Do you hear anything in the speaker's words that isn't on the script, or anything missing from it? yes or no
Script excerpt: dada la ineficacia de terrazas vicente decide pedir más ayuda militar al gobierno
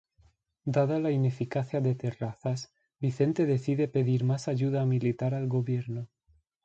no